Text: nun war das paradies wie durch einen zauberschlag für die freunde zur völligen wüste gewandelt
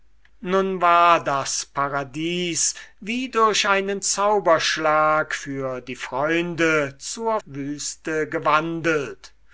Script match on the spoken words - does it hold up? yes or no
no